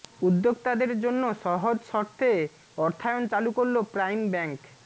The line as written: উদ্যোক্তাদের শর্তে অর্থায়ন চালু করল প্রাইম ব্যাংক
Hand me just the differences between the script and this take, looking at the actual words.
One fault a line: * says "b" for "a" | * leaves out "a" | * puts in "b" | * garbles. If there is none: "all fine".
* puts in "জন্য সহজ"